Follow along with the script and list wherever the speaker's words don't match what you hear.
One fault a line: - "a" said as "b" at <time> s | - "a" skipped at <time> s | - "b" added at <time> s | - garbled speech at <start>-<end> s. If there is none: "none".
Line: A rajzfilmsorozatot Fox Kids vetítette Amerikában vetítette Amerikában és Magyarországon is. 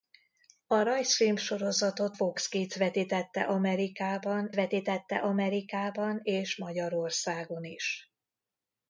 none